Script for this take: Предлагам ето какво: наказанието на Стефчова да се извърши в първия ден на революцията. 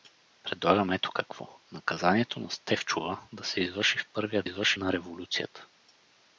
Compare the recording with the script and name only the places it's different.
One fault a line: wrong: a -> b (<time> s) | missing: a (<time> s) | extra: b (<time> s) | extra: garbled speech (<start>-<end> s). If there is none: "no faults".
wrong: ден -> извърши (4.4 s)